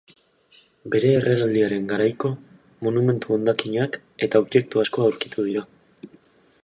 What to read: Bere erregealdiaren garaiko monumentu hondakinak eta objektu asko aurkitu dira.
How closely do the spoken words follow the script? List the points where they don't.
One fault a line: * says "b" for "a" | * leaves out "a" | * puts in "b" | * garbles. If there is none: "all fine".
all fine